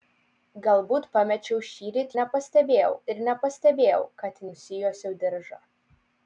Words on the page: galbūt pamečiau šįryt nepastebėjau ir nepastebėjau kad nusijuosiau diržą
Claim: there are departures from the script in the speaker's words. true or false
false